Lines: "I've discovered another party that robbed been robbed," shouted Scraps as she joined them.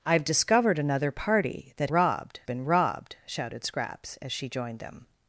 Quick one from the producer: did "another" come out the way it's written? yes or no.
yes